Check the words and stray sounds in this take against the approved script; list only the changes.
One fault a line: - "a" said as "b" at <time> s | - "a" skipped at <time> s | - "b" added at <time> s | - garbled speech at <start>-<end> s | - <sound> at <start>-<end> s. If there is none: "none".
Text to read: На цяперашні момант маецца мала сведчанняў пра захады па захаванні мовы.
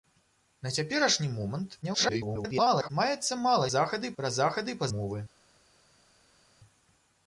- garbled speech at 1.8-2.9 s
- "сведчанняў" said as "захады" at 3.7 s
- "захаванні" skipped at 4.9 s